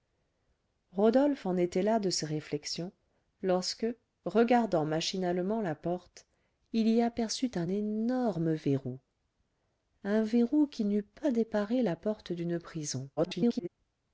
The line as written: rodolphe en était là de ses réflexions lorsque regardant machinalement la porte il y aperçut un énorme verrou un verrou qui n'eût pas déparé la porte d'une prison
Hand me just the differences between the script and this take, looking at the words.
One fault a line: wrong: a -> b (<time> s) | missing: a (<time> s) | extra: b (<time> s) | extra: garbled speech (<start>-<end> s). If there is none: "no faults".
extra: garbled speech (13.2-13.7 s)